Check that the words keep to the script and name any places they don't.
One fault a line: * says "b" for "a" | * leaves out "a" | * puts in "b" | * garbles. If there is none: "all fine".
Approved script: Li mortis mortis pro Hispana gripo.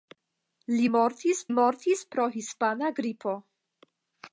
all fine